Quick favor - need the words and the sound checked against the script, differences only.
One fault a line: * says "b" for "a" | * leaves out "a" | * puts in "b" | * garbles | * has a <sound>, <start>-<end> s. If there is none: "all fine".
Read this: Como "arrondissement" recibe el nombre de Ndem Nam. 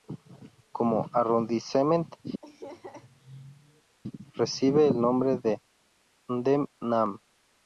* has a laugh, 2.4-4.0 s